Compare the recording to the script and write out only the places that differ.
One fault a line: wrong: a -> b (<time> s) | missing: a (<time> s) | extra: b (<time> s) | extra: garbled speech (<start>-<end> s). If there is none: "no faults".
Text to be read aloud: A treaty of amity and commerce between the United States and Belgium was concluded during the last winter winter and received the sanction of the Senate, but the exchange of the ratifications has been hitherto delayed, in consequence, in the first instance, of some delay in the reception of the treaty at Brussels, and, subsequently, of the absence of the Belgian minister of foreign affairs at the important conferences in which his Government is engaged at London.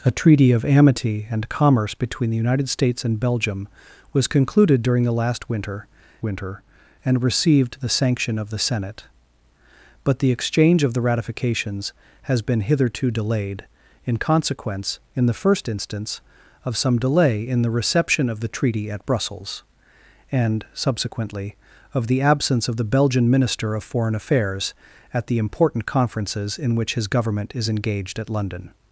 no faults